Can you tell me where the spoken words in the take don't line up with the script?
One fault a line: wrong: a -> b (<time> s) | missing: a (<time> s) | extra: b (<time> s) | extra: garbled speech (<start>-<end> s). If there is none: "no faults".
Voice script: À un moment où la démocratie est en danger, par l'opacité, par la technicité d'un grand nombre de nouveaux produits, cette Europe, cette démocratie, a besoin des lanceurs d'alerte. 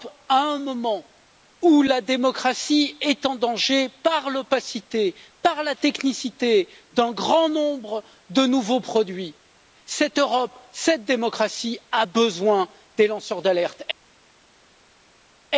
no faults